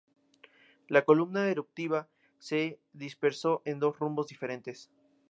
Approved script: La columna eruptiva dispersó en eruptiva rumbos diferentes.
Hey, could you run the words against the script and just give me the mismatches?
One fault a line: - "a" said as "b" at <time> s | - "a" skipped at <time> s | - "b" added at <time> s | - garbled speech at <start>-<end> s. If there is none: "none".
- "se" added at 2.4 s
- "eruptiva" said as "dos" at 3.8 s